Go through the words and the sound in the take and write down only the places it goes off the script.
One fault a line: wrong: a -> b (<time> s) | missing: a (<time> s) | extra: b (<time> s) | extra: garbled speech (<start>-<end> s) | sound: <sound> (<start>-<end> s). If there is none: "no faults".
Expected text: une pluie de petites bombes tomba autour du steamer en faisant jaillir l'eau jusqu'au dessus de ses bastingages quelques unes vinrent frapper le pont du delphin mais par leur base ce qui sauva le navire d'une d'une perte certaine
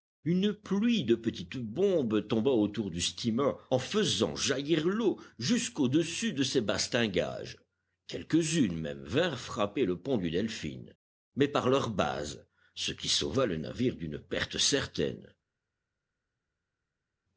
extra: même (8.8 s)
missing: d'une (14.2 s)